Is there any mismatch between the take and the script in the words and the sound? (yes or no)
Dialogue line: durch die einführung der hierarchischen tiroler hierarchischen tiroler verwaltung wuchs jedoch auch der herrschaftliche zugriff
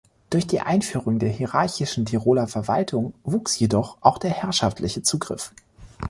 yes